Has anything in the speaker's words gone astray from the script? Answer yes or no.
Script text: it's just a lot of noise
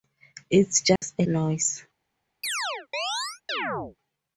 yes